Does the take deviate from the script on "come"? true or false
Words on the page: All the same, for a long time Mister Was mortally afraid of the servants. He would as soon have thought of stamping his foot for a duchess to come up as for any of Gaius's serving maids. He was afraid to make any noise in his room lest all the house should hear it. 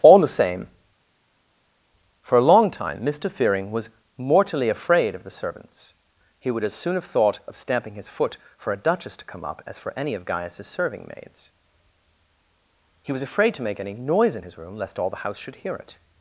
false